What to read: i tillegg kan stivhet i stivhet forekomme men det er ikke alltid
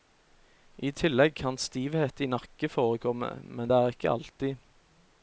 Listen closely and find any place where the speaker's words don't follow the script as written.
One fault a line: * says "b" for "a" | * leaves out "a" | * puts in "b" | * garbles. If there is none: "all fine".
* says "nakke" for "stivhet"